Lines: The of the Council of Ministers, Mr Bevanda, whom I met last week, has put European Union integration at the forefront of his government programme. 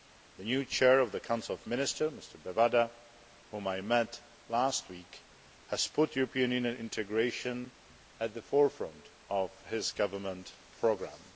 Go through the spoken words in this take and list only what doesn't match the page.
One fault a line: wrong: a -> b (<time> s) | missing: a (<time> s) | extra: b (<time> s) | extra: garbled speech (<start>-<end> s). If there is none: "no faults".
extra: new Chair (0.4 s)